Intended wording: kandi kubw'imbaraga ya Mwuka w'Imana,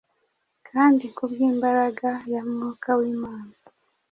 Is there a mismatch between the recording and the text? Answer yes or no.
no